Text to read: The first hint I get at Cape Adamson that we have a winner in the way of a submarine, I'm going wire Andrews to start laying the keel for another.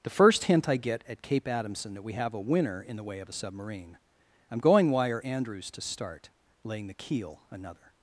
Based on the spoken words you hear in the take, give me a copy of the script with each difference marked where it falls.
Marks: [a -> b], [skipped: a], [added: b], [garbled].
The first hint I get at Cape Adamson that we have a winner in the way of a submarine, I'm going wire Andrews to start laying the keel [skipped: for] another.